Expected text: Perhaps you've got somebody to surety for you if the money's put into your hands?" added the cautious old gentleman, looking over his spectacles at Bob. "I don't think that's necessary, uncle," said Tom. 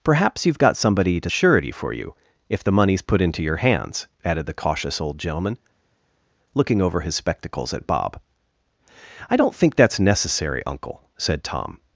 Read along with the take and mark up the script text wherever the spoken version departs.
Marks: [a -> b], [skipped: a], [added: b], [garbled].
Perhaps you've got somebody to surety for you if the money's put into your hands?" added the cautious old gentleman, looking over his spectacles at Bob. "I don't think that's necessary, uncle," said Tom.